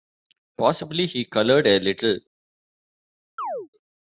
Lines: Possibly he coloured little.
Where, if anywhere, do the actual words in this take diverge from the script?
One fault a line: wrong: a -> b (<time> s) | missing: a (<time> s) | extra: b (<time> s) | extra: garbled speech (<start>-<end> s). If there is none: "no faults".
extra: a (1.7 s)